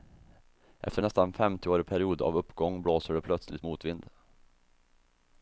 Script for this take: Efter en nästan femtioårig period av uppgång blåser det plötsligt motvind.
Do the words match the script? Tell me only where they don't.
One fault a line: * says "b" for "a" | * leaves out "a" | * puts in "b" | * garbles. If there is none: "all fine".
all fine